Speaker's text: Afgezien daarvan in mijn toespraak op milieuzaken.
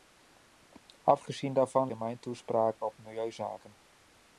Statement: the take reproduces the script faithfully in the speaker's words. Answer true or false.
true